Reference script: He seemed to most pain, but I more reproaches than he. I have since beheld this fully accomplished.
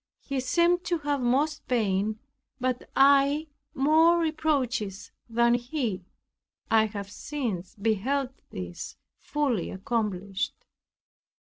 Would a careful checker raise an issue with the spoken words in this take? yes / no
yes